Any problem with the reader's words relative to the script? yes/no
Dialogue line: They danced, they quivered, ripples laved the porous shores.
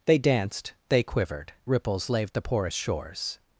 no